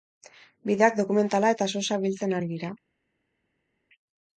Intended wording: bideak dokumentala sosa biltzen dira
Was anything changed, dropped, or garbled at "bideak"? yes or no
no